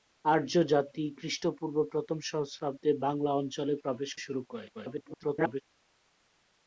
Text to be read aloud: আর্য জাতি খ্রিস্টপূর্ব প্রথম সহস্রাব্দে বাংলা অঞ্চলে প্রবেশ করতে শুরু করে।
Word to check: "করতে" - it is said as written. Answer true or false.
false